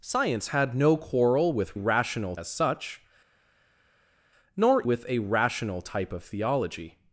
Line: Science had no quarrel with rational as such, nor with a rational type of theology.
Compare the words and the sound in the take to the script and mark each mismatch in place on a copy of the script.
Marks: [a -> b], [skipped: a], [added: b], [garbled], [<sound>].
Science had no quarrel with rational as such, nor with a rational type of theology.